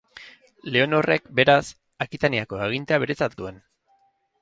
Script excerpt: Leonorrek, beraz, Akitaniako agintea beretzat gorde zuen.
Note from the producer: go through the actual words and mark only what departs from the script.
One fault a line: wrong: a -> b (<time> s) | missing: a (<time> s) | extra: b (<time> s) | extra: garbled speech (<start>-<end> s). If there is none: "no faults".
missing: gorde (3.4 s)